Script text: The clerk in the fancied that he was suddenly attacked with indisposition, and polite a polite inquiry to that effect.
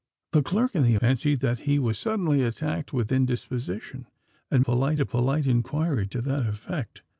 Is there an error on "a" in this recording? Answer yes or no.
no